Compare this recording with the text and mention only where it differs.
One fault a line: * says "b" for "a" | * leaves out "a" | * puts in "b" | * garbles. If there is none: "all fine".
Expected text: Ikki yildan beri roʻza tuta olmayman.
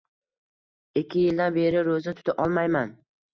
all fine